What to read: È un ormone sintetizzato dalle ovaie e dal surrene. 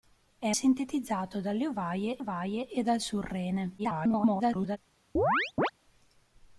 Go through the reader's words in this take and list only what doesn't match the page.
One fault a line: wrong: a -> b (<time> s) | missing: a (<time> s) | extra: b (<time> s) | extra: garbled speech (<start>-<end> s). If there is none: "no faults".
missing: un ormone (0.5 s)
extra: ovaie (2.2 s)
extra: garbled speech (3.8-4.8 s)